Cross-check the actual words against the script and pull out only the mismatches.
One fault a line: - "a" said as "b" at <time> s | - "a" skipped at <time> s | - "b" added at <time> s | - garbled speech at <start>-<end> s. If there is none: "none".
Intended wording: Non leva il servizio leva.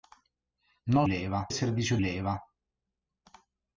none